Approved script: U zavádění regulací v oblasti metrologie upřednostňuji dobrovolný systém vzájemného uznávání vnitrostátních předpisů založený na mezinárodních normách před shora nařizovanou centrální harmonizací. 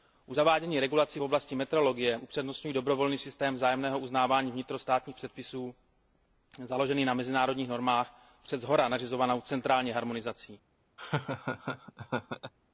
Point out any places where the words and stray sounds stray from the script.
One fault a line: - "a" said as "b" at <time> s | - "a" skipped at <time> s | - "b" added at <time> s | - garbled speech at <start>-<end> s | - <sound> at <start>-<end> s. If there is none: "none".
- laugh at 11.0-12.5 s